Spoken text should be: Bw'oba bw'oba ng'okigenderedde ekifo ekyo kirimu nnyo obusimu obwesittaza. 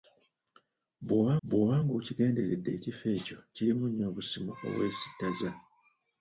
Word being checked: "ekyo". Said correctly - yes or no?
yes